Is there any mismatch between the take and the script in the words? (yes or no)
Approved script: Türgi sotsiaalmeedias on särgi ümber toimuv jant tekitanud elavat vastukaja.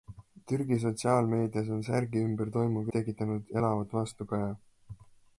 yes